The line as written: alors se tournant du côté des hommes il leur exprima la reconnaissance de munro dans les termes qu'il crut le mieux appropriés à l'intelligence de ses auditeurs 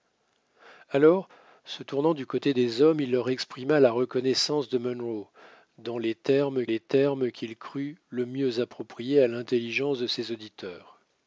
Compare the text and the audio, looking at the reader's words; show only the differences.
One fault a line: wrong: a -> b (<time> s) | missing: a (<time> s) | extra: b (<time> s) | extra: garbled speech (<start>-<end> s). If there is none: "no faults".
extra: les termes (6.6 s)